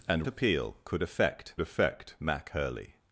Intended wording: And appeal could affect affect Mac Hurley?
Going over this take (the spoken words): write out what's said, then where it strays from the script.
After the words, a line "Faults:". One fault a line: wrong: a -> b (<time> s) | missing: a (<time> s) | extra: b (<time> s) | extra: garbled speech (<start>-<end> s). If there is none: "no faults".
And appeal could affect affect Mac Hurley?
Faults:
no faults